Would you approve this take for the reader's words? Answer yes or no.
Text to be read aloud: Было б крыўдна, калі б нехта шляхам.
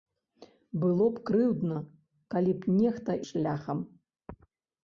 yes